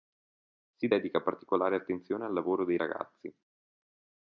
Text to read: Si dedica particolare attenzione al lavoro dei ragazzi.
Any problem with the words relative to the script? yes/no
no